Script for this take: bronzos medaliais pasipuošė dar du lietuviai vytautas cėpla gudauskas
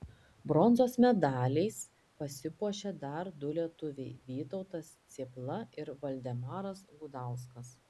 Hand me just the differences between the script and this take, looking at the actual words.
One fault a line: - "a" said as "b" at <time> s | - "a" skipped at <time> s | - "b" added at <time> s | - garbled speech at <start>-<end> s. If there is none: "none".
- "ir valdemaras" added at 5.8 s